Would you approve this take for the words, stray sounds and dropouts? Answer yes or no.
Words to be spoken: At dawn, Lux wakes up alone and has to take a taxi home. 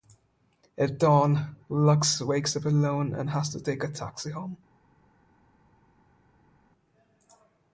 yes